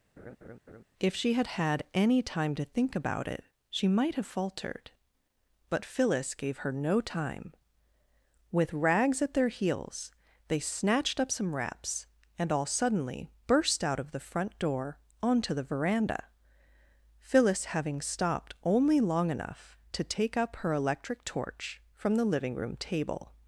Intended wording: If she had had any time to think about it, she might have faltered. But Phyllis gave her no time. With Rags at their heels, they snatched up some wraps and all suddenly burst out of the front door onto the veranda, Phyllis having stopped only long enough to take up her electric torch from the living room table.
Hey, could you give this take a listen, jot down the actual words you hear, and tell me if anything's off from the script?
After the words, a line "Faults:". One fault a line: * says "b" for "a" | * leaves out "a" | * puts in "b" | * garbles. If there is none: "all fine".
If she had had any time to think about it, she might have faltered. But Phyllis gave her no time. With Rags at their heels, they snatched up some wraps and all suddenly burst out of the front door onto the veranda, Phyllis having stopped only long enough to take up her electric torch from the living room table.
Faults:
all fine